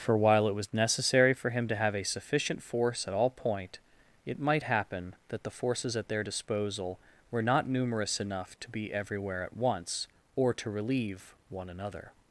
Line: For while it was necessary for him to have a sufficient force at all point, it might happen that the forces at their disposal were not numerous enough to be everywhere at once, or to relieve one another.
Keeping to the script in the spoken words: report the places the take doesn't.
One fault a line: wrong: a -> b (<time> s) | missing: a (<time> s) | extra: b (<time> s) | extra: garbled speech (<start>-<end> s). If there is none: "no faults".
no faults